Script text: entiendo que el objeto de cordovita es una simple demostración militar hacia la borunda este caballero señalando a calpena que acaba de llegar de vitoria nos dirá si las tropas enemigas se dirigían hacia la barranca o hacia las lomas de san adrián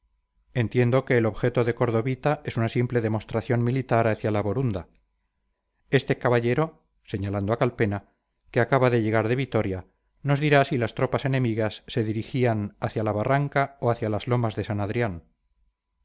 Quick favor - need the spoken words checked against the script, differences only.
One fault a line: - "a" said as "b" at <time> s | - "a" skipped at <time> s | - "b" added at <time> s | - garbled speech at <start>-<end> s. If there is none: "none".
none